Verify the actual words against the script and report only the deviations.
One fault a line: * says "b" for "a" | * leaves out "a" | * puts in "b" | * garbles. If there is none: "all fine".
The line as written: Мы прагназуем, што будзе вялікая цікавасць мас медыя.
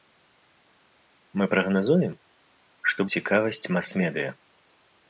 * leaves out "будзе вялікая"